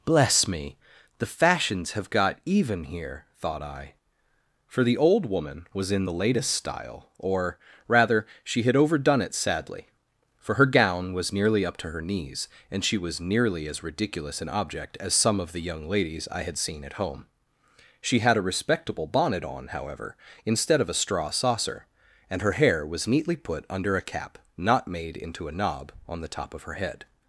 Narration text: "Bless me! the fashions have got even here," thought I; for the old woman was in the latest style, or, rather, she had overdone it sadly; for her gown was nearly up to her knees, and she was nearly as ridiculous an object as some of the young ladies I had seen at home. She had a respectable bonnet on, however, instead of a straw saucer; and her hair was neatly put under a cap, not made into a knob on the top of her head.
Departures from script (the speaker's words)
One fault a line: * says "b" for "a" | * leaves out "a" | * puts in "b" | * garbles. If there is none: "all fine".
all fine